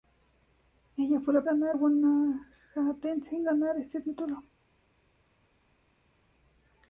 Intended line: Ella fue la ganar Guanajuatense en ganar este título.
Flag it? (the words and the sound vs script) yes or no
no